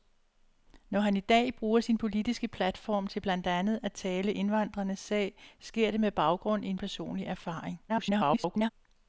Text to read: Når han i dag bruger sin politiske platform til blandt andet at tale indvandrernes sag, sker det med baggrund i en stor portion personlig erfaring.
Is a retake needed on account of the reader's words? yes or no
yes